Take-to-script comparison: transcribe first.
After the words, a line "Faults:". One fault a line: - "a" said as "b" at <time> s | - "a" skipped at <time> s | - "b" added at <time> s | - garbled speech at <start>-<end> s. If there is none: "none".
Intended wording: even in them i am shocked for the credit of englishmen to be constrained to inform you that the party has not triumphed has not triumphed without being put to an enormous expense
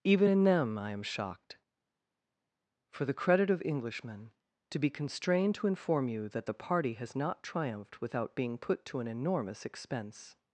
even in them i am shocked for the credit of englishmen to be constrained to inform you that the party has not triumphed without being put to an enormous expense
Faults:
- "has not triumphed" skipped at 8.0 s